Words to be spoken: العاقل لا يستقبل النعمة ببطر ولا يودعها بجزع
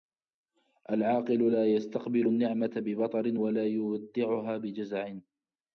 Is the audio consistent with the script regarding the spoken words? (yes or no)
yes